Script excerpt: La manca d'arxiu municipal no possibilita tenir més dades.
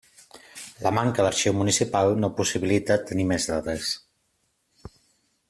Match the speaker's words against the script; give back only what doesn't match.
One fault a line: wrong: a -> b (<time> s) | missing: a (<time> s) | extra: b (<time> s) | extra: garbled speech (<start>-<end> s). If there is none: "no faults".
no faults